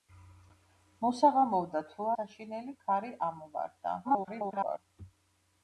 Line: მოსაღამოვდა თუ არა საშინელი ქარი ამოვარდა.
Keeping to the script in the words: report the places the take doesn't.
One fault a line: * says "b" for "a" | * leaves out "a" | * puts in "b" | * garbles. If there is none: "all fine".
* leaves out "არა"
* garbles